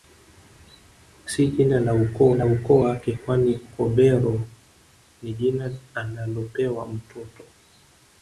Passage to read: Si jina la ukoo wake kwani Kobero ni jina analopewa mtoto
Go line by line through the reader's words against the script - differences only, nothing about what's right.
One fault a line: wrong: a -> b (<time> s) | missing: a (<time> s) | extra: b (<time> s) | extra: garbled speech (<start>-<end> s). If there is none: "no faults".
extra: la ukoo (2.3 s)